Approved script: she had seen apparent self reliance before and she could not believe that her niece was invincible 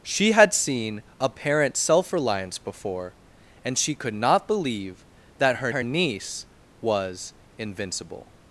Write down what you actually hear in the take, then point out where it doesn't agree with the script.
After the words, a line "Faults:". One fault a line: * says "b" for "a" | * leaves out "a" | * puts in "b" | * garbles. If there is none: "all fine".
she had seen apparent self reliance before and she could not believe that her her niece was invincible
Faults:
* puts in "her"